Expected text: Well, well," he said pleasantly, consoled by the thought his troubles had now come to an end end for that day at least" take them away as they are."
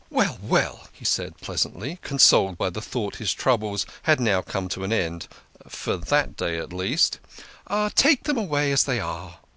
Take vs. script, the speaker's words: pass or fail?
fail